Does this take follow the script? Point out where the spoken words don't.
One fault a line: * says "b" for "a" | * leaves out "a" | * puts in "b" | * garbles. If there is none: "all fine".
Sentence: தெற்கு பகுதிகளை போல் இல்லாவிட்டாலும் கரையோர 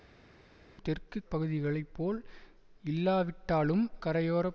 all fine